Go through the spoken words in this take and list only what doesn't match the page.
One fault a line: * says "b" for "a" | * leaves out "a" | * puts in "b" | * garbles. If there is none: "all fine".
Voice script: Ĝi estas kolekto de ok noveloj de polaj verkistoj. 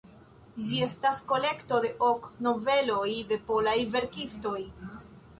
all fine